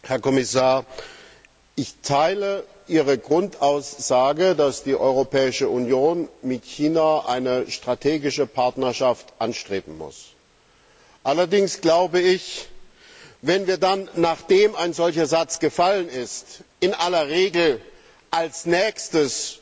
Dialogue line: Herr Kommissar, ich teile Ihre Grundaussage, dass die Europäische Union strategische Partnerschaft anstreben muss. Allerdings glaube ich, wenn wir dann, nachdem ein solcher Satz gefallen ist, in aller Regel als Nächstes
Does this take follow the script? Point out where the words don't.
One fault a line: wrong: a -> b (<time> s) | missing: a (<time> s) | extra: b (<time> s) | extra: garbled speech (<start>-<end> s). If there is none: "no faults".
extra: mit China eine (6.4 s)